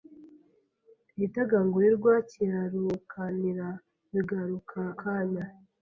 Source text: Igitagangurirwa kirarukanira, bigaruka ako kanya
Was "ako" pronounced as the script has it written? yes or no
no